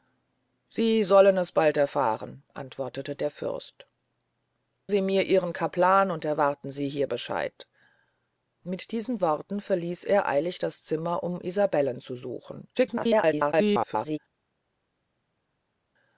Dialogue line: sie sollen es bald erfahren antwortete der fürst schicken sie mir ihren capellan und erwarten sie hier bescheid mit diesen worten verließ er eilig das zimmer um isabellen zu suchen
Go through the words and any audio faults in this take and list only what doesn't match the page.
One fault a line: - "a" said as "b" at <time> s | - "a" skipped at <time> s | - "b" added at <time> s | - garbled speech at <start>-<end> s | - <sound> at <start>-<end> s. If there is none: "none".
- "schicken" skipped at 3.9 s
- garbled speech at 12.7-14.2 s